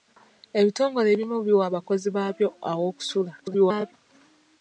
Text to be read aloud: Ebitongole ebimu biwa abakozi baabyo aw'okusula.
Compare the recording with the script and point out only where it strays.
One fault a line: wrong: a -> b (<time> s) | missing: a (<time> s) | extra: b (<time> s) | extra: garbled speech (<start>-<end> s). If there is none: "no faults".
extra: garbled speech (3.4-3.9 s)